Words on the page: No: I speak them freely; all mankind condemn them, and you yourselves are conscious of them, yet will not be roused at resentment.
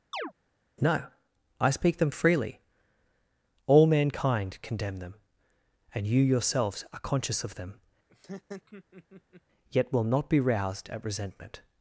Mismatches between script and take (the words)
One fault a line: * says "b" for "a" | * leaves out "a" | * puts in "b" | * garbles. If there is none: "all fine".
all fine